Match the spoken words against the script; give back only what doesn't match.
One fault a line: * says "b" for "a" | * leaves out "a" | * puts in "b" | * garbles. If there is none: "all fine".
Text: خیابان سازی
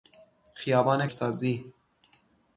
all fine